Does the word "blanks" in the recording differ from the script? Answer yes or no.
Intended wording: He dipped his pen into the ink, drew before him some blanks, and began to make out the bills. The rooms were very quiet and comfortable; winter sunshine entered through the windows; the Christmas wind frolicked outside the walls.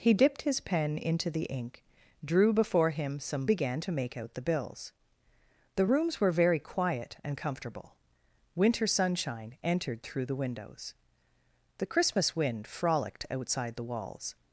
yes